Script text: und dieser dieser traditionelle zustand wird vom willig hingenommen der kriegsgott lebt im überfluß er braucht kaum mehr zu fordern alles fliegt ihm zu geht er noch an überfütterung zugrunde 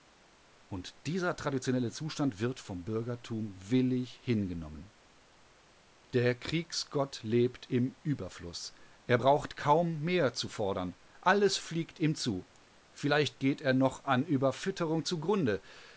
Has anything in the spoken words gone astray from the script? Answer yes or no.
yes